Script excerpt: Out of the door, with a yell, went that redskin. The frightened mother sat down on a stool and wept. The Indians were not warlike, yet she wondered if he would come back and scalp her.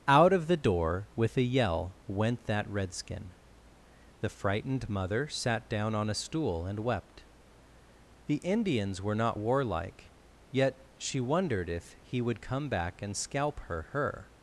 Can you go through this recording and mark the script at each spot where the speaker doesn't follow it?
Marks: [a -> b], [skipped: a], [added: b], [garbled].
Out of the door, with a yell, went that redskin. The frightened mother sat down on a stool and wept. The Indians were not warlike, yet she wondered if he would come back and scalp her. [added: her]